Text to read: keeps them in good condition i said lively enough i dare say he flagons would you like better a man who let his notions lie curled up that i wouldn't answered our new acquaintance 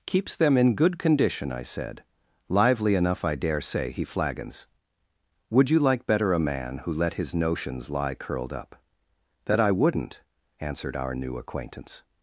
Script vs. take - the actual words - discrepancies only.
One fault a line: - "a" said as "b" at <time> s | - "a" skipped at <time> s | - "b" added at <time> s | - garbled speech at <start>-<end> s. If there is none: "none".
none